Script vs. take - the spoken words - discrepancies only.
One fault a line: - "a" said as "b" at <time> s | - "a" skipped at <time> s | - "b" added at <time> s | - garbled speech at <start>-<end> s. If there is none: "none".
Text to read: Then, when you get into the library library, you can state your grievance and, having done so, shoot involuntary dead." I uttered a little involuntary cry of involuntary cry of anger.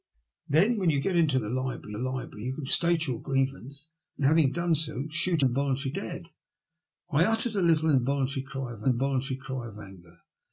none